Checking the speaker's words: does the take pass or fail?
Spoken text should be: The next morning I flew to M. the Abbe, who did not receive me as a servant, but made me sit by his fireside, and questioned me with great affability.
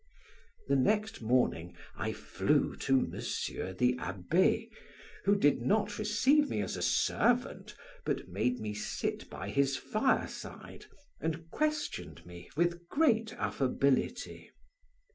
pass